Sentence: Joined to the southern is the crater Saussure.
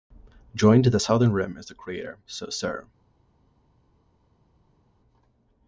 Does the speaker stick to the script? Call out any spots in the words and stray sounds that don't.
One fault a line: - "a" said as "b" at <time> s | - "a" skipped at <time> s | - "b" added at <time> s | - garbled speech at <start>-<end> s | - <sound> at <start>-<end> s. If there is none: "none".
- "rim" added at 1.3 s